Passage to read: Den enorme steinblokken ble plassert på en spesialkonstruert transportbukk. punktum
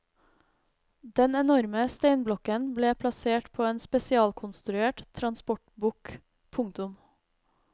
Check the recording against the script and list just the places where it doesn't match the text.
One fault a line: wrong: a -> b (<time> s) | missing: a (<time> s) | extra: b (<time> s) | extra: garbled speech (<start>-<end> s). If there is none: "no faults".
no faults